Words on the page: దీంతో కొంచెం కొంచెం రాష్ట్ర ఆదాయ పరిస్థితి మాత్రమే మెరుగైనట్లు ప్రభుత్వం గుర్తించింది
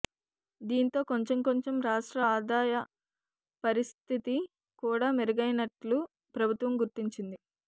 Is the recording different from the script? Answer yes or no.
yes